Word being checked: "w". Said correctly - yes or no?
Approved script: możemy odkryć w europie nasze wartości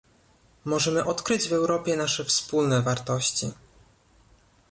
yes